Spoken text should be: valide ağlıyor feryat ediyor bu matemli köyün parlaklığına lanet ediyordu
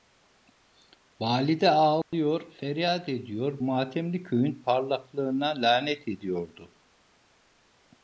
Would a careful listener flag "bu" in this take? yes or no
yes